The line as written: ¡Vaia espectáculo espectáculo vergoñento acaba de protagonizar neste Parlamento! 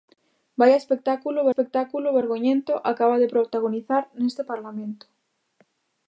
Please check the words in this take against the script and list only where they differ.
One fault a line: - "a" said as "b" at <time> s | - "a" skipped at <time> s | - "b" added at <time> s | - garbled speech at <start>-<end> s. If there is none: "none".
none